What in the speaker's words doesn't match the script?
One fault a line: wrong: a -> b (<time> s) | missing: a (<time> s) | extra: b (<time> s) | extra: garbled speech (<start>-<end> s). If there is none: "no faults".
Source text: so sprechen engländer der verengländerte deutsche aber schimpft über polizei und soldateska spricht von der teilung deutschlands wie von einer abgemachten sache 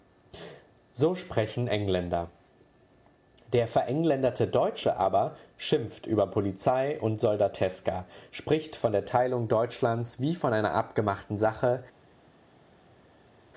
no faults